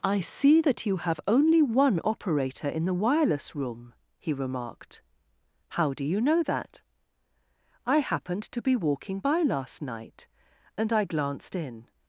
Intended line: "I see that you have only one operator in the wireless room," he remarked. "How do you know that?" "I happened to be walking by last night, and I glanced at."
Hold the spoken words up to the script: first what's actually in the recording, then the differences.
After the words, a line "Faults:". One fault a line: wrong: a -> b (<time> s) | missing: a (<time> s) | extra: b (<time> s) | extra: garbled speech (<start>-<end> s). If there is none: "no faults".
"I see that you have only one operator in the wireless room," he remarked. "How do you know that?" "I happened to be walking by last night, and I glanced in."
Faults:
wrong: at -> in (11.5 s)